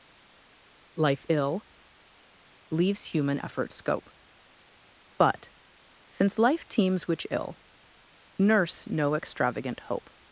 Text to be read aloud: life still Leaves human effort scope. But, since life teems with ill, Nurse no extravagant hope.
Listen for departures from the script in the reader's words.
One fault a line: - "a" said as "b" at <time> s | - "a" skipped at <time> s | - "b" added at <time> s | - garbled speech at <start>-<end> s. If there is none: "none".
- "still" said as "ill" at 1.3 s
- "with" said as "which" at 7.1 s